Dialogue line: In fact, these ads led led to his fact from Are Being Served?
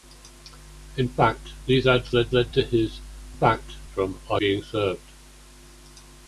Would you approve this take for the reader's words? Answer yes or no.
yes